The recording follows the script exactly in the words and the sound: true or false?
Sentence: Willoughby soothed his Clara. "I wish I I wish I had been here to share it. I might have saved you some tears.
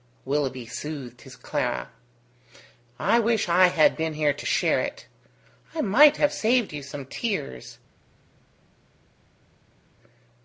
false